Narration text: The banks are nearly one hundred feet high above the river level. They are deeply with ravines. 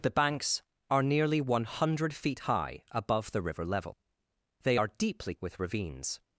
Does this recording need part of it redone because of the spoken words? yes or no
no